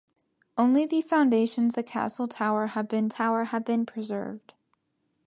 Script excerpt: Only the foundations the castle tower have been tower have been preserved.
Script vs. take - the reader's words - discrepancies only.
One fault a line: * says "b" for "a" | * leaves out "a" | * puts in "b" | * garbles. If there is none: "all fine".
all fine